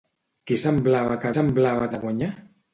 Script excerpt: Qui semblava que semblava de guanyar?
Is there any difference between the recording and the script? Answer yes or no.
no